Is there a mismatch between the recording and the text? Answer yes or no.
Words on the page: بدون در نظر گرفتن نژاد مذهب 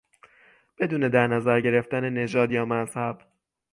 yes